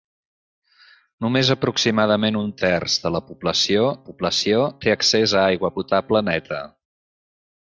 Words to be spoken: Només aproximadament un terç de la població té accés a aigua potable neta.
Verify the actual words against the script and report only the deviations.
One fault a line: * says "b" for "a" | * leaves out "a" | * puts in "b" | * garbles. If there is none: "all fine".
* puts in "població"